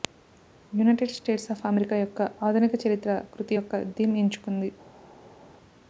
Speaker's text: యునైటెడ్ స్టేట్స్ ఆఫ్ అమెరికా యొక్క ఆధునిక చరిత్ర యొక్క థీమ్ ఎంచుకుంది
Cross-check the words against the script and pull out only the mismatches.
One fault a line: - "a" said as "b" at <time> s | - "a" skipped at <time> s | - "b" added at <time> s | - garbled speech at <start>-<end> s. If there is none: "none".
- "కృతి" added at 3.3 s